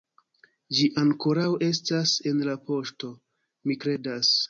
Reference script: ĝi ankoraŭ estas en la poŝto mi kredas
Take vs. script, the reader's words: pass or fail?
pass